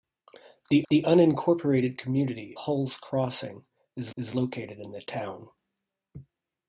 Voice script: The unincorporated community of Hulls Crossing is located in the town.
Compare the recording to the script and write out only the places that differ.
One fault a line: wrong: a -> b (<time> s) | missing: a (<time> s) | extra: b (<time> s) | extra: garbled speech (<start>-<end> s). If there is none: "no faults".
extra: the (0.9 s)
missing: of (2.6 s)
extra: is (4.2 s)